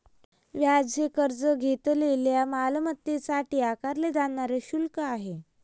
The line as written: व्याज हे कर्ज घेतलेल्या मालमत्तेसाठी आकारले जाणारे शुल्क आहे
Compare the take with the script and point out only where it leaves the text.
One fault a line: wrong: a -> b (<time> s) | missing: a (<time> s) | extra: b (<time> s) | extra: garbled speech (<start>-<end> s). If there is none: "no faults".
no faults